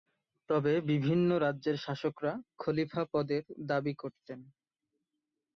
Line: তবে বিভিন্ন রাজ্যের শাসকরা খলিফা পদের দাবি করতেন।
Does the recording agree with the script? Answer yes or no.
yes